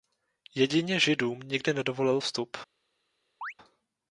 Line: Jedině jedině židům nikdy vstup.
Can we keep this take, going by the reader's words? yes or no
no